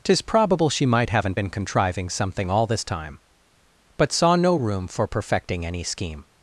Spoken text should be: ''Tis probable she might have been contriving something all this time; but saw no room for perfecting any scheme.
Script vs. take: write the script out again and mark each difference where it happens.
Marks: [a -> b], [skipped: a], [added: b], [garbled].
''Tis probable she might [have -> haven't] been contriving something all this time; but saw no room for perfecting any scheme.